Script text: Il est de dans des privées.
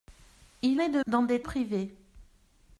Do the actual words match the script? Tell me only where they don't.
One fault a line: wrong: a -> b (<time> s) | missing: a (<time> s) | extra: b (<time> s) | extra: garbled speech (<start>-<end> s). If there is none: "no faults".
no faults